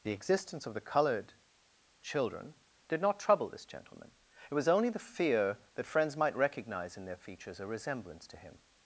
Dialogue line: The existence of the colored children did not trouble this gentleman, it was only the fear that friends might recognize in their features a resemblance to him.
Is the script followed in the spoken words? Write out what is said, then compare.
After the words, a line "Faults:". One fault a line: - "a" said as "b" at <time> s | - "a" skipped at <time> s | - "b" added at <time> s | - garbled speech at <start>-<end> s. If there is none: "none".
The existence of the colored children did not trouble this gentleman, it was only the fear that friends might recognize in their features a resemblance to him.
Faults:
none